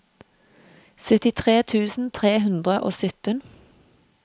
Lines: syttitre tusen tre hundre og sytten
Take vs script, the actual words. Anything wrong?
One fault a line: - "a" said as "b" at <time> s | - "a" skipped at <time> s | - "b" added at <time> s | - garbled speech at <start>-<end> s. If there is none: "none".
none